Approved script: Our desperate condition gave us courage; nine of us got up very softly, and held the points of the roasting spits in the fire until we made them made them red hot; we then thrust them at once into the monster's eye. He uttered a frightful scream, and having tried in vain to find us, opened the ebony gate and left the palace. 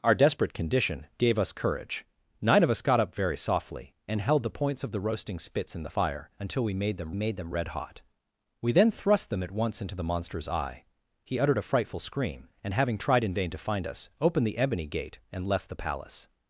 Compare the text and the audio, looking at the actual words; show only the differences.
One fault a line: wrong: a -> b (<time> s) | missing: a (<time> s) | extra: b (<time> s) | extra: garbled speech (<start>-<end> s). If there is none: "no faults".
no faults